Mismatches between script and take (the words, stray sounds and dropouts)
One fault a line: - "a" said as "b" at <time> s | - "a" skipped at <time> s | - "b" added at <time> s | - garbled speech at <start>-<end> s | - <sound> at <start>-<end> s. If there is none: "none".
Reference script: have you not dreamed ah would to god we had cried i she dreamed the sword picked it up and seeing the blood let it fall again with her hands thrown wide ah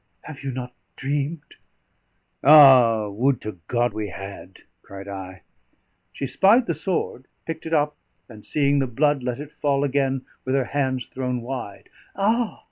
- "dreamed" said as "spied" at 6.3 s